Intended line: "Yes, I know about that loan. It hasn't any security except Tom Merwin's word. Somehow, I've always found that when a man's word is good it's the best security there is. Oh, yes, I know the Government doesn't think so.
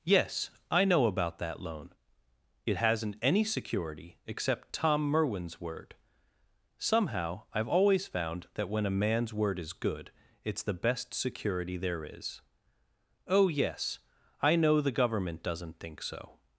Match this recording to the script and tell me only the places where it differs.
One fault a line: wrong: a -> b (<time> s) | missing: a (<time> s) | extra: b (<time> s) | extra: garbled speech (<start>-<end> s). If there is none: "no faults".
no faults